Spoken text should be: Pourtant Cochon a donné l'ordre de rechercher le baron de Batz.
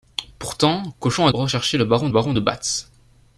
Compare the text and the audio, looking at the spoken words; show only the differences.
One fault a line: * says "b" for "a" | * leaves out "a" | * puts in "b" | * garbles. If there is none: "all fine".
* leaves out "donné l'ordre"
* puts in "baron"